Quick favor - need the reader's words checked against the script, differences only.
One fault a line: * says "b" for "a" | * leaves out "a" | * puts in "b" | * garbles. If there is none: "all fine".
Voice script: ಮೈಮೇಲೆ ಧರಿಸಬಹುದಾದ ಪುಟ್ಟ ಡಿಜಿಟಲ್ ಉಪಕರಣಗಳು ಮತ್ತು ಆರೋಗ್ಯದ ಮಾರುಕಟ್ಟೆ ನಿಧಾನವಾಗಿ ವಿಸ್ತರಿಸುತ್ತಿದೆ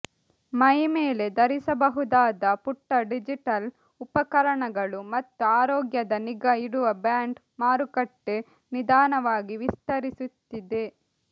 * puts in "ನಿಗಾ ಇಡುವ ಬ್ಯಾಂಡ್"